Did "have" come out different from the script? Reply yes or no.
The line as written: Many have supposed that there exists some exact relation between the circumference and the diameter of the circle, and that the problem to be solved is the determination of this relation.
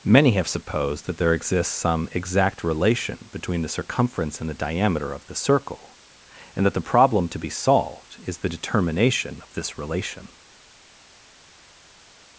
no